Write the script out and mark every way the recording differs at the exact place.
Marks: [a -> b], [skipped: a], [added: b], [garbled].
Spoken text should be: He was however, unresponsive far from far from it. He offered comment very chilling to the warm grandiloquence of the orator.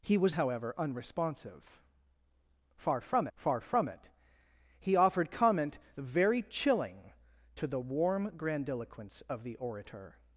He was however, unresponsive far from far from it. He offered comment very chilling to the warm grandiloquence of the orator.